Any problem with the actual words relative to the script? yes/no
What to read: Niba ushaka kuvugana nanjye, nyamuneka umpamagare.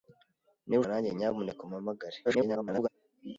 yes